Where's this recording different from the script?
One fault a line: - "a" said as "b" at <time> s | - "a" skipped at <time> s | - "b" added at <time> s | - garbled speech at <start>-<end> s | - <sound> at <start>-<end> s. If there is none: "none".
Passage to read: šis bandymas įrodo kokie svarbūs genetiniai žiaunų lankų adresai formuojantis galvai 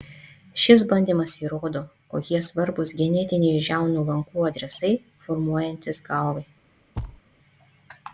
- thud at 6.9-7.2 s